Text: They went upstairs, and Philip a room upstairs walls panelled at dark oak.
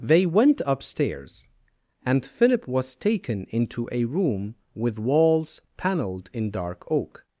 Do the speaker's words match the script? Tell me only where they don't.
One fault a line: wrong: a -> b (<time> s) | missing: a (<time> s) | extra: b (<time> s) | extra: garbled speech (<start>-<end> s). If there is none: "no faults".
extra: was taken into (2.7 s)
wrong: upstairs -> with (4.7 s)
wrong: at -> in (6.3 s)